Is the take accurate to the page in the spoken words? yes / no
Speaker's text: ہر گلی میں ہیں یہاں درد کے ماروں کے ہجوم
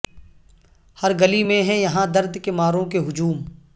yes